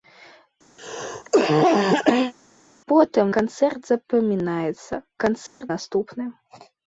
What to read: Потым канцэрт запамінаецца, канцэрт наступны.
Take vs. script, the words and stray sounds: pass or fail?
fail